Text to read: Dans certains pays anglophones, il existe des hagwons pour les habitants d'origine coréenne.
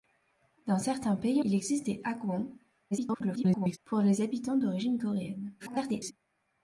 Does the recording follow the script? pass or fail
fail